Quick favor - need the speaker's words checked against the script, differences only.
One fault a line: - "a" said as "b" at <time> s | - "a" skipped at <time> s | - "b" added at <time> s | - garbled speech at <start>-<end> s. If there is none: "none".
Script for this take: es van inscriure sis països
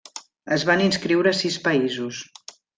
none